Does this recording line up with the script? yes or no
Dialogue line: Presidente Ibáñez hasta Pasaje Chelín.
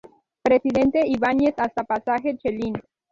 yes